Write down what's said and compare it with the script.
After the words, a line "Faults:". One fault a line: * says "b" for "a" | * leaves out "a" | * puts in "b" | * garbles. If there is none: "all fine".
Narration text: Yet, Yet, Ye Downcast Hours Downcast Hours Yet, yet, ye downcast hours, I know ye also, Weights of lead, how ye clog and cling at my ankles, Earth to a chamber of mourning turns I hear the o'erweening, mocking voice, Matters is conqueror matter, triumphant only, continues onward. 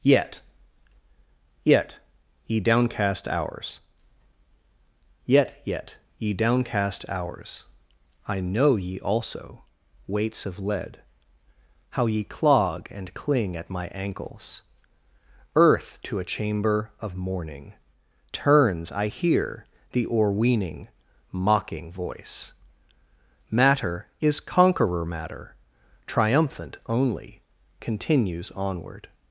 Yet, Yet, Ye Downcast Hours Yet, yet, ye downcast hours, I know ye also, Weights of lead, how ye clog and cling at my ankles, Earth to a chamber of mourning turns I hear the o'erweening, mocking voice, Matter is conqueror matter, triumphant only, continues onward.
Faults:
* leaves out "Downcast Hours"
* says "Matter" for "Matters"